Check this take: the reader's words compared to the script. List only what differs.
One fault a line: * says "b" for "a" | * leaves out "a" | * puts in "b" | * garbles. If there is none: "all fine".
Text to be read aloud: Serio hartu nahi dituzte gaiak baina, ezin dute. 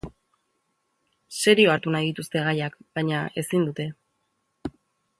all fine